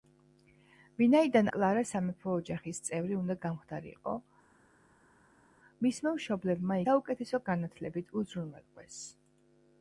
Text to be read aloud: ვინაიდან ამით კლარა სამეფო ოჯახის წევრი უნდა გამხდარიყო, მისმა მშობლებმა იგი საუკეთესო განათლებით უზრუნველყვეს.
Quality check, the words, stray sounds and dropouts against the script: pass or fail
fail